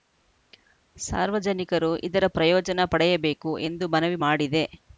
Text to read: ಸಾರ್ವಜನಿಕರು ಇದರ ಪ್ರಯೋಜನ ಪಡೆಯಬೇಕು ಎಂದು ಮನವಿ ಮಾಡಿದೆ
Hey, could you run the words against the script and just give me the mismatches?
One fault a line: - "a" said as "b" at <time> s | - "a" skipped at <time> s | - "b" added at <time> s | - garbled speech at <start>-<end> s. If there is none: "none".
none